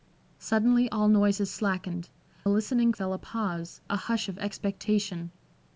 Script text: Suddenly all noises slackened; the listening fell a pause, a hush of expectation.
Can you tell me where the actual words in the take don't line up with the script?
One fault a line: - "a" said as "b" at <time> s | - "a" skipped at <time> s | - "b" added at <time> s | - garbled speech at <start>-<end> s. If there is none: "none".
none